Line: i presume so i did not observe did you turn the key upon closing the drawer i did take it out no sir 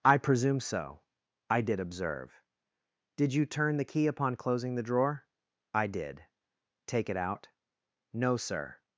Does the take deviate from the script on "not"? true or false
true